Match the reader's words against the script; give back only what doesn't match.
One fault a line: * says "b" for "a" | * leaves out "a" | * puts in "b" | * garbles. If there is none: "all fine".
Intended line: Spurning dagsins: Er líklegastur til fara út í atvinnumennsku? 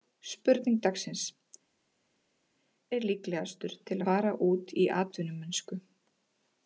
all fine